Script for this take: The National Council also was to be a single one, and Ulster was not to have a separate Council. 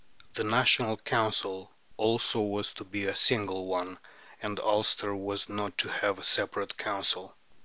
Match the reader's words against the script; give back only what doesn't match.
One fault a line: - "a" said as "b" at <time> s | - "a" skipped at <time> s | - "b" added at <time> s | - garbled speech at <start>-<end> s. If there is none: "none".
none